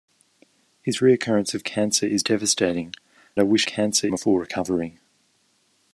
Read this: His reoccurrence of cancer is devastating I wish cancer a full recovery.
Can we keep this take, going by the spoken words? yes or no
yes